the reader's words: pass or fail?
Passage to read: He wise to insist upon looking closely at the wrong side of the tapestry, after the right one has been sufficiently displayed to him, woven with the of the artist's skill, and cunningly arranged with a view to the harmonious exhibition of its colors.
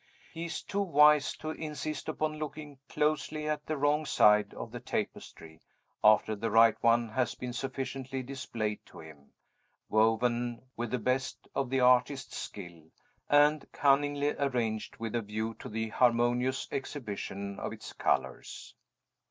fail